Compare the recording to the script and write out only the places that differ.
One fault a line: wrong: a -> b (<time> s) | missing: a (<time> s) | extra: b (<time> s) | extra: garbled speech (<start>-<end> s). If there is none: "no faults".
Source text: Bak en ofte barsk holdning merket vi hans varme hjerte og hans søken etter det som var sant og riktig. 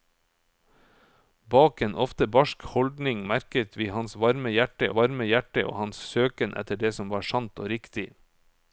extra: varme hjerte (5.0 s)